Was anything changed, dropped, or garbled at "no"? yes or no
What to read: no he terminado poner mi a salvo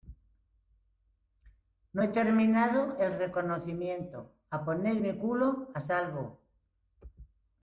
no